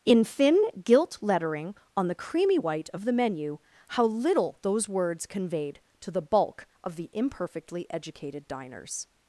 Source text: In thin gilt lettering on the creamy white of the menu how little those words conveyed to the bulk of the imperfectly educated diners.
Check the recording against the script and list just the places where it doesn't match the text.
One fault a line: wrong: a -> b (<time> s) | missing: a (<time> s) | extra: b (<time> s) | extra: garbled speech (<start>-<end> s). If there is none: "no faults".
no faults